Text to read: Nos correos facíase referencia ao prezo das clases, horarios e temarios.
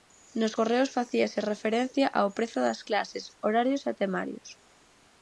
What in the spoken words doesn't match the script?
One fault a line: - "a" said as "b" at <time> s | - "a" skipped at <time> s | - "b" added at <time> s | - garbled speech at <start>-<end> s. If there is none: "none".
none